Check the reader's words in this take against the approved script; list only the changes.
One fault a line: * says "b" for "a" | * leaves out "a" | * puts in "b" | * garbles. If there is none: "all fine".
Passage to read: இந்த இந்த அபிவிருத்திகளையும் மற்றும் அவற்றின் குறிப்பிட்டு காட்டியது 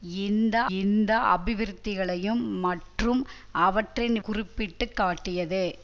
all fine